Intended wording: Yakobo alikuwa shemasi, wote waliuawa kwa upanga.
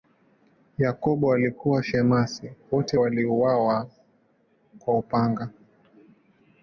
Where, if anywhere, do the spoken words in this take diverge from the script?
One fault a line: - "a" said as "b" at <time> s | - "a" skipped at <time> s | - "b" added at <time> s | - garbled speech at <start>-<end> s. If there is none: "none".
none